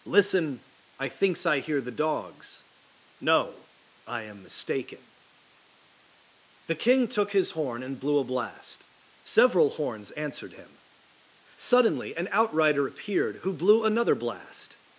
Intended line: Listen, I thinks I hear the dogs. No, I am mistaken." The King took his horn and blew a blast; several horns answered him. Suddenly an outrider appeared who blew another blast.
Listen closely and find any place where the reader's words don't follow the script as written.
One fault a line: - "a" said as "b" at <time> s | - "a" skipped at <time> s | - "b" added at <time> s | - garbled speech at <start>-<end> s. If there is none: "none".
none